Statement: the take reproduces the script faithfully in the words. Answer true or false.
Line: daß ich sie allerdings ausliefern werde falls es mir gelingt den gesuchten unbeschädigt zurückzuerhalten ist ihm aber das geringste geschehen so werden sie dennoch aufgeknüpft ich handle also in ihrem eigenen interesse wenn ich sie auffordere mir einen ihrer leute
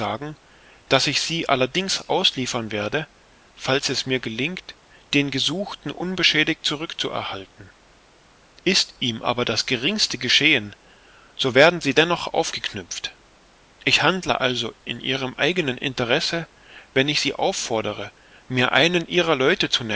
true